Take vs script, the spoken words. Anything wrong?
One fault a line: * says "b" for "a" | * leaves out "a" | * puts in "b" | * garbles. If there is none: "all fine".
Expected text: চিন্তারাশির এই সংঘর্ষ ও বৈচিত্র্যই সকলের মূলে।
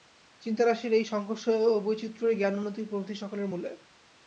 * puts in "জ্ঞান উন্নতি প্রভৃতি"